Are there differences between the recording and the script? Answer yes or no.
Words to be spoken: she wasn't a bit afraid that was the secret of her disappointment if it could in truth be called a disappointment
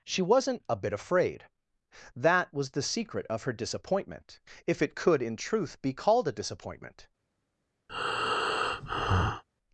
no